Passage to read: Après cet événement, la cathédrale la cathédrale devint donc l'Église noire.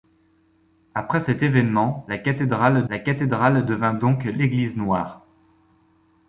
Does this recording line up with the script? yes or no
yes